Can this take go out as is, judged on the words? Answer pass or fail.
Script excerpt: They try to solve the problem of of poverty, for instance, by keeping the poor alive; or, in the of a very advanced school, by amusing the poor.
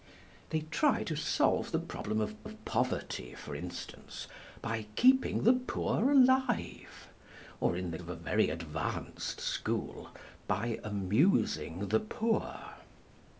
pass